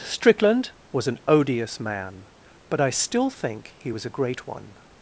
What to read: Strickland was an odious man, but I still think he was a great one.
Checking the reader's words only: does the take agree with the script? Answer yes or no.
yes